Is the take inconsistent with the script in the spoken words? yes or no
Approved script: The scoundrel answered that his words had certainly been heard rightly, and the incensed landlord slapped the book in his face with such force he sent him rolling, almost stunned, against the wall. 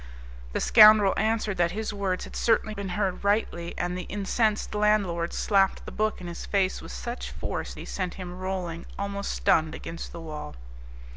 no